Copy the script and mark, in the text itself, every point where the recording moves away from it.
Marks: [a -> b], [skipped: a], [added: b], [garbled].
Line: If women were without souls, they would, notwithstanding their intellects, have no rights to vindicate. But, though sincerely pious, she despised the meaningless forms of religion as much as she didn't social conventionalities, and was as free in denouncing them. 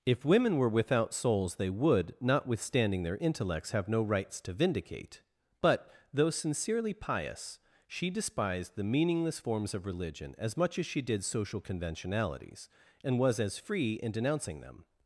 If women were without souls, they would, notwithstanding their intellects, have no rights to vindicate. But, though sincerely pious, she despised the meaningless forms of religion as much as she [didn't -> did] social conventionalities, and was as free in denouncing them.